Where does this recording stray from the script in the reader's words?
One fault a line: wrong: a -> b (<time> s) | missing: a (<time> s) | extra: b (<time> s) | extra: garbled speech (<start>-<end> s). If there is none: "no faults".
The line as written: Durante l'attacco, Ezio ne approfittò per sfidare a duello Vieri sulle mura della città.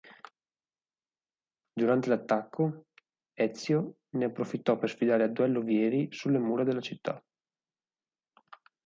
no faults